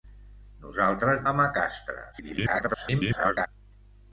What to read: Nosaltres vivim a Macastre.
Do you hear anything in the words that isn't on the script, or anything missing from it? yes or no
yes